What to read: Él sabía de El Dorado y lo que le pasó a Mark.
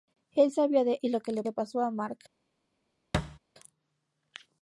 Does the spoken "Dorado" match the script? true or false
false